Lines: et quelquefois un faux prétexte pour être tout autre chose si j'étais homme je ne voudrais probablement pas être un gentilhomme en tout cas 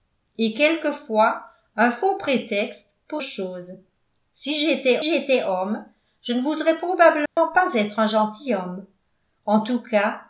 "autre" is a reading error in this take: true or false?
true